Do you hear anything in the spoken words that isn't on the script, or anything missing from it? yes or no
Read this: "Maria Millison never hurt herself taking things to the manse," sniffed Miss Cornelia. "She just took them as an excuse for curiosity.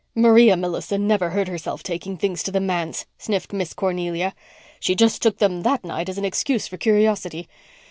yes